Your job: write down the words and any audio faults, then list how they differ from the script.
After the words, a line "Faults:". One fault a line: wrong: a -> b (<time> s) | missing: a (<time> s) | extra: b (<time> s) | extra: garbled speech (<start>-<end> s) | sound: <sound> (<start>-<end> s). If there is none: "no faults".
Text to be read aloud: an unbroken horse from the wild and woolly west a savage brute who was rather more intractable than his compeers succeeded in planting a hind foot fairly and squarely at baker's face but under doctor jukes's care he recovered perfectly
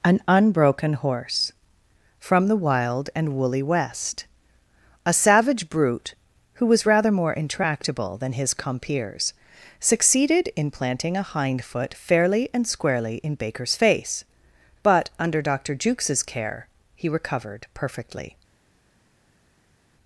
an unbroken horse from the wild and woolly west a savage brute who was rather more intractable than his compeers succeeded in planting a hind foot fairly and squarely in baker's face but under doctor jukes's care he recovered perfectly
Faults:
wrong: at -> in (13.2 s)